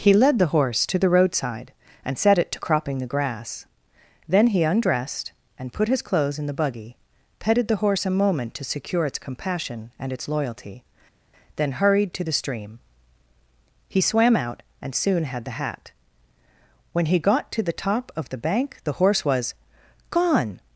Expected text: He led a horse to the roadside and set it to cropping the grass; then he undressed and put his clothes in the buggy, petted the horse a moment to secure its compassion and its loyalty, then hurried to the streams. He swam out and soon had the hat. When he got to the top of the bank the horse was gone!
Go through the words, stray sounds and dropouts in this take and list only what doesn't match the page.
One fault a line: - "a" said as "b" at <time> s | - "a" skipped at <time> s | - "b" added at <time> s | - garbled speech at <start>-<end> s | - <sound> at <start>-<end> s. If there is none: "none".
- "a" said as "the" at 0.4 s
- "streams" said as "stream" at 12.3 s